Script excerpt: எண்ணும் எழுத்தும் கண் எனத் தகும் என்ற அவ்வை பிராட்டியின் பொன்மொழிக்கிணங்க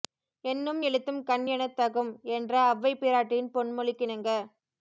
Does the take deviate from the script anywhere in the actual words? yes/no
no